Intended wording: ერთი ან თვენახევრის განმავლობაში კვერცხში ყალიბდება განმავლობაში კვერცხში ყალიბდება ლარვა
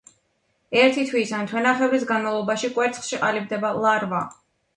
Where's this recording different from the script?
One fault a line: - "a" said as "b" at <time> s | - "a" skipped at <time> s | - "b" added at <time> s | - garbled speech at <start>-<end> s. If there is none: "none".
- "თვის" added at 1.1 s
- "განმავლობაში კვერცხში ყალიბდება" skipped at 3.7 s